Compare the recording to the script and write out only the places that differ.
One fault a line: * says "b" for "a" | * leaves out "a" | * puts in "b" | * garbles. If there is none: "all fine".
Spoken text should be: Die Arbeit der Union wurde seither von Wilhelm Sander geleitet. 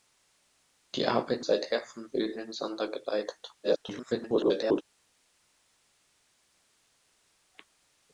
* leaves out "der Union wurde"
* garbles